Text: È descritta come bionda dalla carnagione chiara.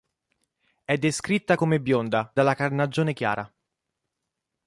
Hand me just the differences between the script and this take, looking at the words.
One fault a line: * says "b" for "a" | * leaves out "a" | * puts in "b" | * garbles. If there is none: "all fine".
all fine